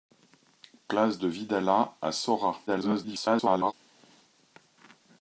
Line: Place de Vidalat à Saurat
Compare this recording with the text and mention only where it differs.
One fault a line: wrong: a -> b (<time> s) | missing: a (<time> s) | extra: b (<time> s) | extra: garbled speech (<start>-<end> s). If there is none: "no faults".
extra: garbled speech (2.7-3.7 s)